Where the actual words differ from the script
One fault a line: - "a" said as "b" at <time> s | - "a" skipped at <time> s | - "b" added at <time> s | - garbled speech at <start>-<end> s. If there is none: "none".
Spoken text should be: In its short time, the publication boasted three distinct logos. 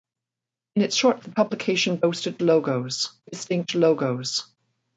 - "time" skipped at 1.2 s
- "three" said as "logos" at 2.4 s